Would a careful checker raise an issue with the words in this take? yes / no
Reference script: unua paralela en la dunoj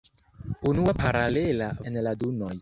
no